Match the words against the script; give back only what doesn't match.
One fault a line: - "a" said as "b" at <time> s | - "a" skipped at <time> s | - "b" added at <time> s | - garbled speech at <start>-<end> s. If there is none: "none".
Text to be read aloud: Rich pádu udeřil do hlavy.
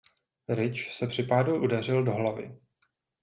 - "se při" added at 0.9 s